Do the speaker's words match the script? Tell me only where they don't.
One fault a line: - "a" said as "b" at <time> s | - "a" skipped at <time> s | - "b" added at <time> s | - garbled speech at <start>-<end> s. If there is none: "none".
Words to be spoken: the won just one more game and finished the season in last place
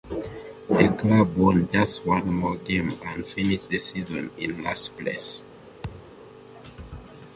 - "club" added at 1.0 s